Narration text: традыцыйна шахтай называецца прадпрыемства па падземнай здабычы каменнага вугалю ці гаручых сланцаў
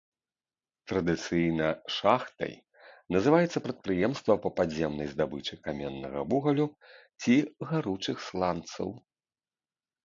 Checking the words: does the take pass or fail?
pass